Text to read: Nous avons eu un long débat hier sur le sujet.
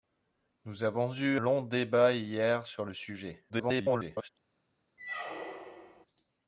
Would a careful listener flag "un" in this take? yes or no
yes